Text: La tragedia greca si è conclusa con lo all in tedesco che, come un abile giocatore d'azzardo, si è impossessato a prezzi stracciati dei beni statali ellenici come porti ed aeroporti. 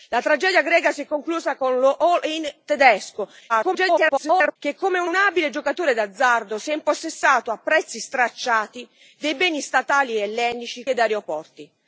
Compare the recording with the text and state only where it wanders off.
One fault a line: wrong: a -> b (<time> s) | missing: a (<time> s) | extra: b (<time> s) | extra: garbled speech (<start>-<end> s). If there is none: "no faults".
extra: garbled speech (3.5-4.6 s)
extra: un (5.0 s)
missing: come porti (10.9 s)